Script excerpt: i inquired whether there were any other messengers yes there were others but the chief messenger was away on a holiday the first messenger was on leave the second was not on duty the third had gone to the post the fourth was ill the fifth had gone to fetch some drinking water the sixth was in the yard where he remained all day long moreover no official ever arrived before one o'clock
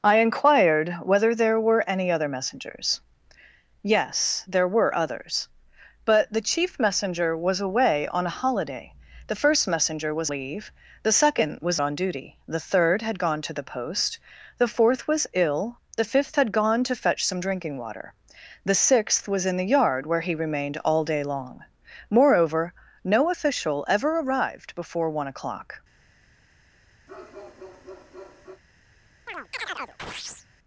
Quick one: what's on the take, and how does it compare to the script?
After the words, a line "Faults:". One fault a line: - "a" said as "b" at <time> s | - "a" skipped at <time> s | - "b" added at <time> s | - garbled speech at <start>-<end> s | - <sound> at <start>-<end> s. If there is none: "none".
i inquired whether there were any other messengers yes there were others but the chief messenger was away on a holiday the first messenger was leave the second was on duty the third had gone to the post the fourth was ill the fifth had gone to fetch some drinking water the sixth was in the yard where he remained all day long moreover no official ever arrived before one o'clock
Faults:
- "on" skipped at 10.3 s
- "not" skipped at 11.8 s
- bark at 27.1-28.6 s
- chirp at 29.3-30.5 s